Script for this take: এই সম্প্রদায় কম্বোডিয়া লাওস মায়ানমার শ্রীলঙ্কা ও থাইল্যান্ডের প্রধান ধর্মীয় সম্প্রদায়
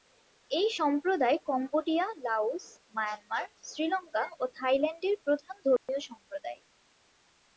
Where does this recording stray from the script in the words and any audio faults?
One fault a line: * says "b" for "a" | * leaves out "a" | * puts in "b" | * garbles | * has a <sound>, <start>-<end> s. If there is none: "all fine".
* has a dropout, 5.8-5.9 s